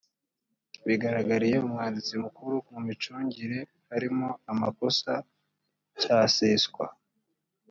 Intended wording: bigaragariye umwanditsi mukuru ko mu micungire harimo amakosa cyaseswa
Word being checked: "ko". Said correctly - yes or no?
no